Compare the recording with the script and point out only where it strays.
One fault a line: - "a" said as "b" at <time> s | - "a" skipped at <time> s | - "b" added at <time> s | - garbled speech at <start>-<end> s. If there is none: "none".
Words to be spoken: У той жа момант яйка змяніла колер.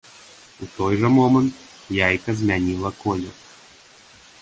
none